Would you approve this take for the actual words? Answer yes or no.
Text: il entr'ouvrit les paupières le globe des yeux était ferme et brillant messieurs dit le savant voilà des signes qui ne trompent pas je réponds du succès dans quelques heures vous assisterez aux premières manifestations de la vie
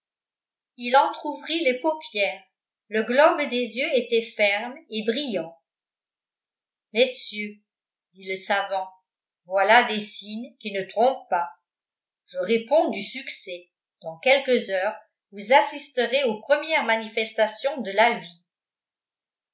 yes